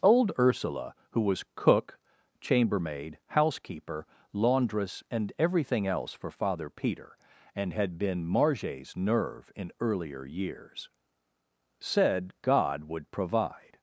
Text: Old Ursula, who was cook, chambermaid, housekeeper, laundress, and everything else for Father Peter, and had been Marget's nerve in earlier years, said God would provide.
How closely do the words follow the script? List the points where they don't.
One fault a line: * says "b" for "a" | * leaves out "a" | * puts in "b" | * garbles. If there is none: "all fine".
all fine